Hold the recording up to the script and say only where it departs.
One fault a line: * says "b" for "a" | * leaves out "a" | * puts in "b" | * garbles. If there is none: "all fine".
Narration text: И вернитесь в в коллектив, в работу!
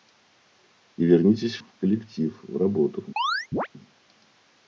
all fine